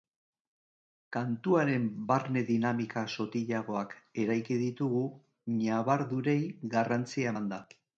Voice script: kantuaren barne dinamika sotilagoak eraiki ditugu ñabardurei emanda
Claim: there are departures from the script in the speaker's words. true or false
true